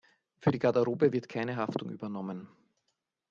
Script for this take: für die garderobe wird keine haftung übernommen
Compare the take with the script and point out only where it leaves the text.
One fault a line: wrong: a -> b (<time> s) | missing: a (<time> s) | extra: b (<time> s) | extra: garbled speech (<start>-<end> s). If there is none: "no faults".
no faults